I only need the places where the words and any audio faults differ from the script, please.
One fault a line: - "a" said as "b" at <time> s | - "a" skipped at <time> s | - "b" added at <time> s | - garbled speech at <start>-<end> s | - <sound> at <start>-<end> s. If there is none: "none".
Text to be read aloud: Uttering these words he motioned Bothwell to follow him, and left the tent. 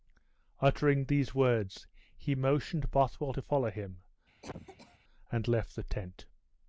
- cough at 4.4-5.0 s